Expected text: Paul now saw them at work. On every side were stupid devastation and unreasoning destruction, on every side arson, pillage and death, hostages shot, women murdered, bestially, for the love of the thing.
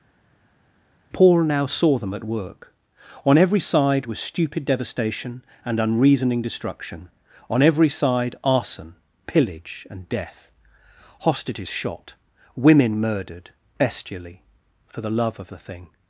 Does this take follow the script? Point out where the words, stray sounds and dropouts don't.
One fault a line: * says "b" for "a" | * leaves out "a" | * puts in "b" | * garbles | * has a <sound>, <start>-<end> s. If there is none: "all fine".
* says "was" for "were"